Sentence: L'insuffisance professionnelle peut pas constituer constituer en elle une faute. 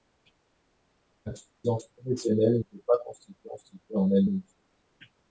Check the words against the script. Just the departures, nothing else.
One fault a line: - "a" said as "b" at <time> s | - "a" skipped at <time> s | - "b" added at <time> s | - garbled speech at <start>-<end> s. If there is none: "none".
none